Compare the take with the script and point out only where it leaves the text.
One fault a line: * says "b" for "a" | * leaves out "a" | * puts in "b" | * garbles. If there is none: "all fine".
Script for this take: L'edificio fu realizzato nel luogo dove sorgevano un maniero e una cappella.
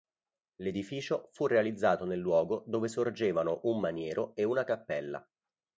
all fine